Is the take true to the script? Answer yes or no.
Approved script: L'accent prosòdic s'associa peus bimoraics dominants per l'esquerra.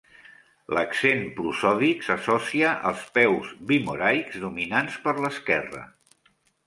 no